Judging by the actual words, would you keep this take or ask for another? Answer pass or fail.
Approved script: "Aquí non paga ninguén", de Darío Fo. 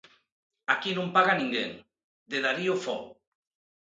pass